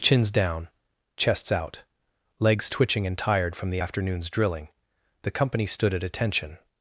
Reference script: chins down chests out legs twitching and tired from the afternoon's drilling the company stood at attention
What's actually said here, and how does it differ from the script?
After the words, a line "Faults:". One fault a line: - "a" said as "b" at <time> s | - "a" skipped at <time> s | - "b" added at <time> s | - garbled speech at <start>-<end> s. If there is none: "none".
chins down chests out legs twitching and tired from the afternoon's drilling the company stood at attention
Faults:
none